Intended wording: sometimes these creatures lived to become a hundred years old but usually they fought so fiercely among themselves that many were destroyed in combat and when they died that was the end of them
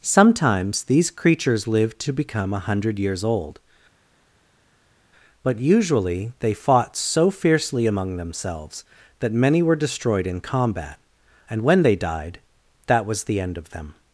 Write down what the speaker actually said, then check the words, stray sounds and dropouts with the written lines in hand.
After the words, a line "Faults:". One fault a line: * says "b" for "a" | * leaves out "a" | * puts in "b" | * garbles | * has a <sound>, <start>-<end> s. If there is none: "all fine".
sometimes these creatures lived to become a hundred years old but usually they fought so fiercely among themselves that many were destroyed in combat and when they died that was the end of them
Faults:
all fine